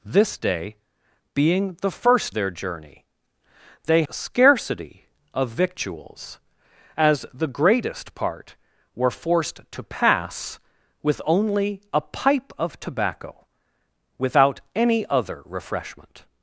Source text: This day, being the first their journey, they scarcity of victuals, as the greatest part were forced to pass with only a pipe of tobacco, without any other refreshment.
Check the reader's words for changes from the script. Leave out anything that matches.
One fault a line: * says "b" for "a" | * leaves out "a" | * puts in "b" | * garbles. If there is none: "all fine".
all fine